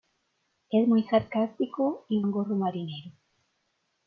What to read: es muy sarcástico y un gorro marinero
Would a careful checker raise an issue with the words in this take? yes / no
no